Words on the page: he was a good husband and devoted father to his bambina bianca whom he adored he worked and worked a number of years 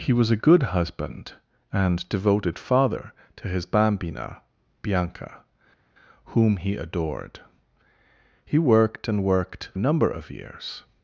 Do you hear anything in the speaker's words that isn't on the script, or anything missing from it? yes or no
no